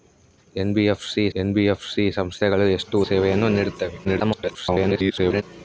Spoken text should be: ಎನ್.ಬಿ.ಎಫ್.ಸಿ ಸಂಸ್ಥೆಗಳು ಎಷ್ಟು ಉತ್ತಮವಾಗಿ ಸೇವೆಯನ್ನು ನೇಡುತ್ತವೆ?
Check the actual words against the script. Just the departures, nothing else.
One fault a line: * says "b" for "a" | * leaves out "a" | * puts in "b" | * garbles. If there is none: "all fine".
* puts in "ಎನ್.ಬಿ.ಎಫ್.ಸಿ"
* leaves out "ಉತ್ತಮವಾಗಿ"
* garbles